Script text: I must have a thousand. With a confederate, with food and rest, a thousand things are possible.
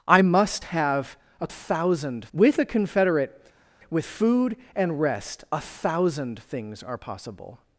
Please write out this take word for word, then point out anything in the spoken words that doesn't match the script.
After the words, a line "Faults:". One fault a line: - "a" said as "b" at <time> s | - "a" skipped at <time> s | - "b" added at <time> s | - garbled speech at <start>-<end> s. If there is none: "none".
I must have a thousand. With a confederate, with food and rest, a thousand things are possible.
Faults:
none